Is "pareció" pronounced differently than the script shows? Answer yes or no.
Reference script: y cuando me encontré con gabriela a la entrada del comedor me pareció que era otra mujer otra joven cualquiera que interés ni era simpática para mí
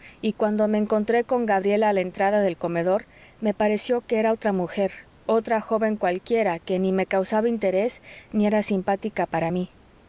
no